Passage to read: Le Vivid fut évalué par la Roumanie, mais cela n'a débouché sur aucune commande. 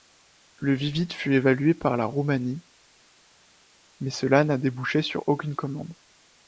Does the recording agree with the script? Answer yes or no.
yes